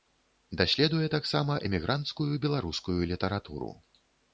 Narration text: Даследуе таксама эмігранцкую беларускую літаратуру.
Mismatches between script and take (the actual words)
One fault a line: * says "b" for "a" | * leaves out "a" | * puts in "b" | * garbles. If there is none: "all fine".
all fine